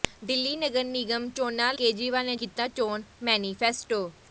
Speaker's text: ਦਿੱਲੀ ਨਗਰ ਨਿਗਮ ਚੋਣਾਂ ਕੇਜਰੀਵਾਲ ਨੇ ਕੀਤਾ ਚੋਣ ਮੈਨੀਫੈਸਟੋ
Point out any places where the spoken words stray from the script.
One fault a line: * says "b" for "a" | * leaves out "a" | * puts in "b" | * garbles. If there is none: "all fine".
all fine